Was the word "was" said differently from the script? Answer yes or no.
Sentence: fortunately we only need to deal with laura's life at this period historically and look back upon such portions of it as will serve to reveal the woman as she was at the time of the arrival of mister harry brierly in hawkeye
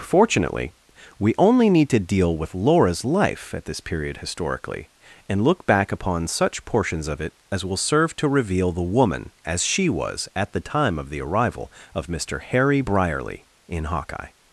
no